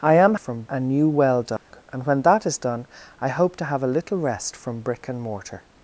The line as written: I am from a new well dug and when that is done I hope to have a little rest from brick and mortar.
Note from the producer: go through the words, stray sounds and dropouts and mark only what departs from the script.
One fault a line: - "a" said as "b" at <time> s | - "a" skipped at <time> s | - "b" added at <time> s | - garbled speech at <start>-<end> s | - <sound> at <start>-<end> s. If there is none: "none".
- dropout at 1.6-1.7 s